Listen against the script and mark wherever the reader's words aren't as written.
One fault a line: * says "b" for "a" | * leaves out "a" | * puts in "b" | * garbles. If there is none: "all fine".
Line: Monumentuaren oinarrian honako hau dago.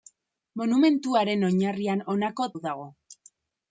all fine